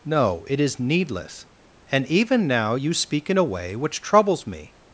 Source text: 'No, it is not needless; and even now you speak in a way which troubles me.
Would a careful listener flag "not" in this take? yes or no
yes